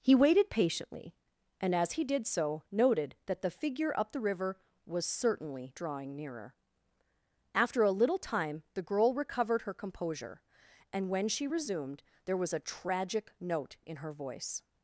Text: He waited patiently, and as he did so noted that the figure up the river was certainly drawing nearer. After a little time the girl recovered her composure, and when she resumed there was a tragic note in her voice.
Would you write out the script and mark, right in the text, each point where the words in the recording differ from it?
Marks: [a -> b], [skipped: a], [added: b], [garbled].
He waited patiently, and as he did so noted that the figure up the river was certainly drawing nearer. After a little time the girl recovered her composure, and when she resumed there was a tragic note in her voice.